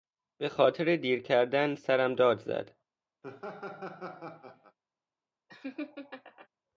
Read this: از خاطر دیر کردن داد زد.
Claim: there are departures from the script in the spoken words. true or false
true